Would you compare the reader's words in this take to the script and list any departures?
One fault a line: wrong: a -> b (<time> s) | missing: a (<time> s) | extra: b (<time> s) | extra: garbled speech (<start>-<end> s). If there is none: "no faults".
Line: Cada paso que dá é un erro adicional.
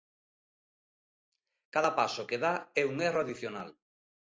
no faults